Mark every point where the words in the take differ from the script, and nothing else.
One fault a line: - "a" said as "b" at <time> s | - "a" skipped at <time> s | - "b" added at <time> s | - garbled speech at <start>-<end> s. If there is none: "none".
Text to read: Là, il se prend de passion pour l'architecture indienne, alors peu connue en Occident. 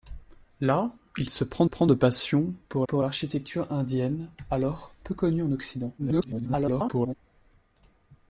- "prend" added at 1.6 s
- "pour" added at 2.9 s
- garbled speech at 6.0-7.1 s